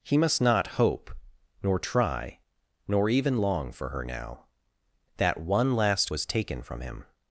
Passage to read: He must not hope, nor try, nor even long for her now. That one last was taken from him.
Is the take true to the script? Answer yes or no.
yes